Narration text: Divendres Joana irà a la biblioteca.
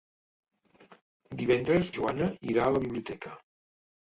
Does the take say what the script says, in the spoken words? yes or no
yes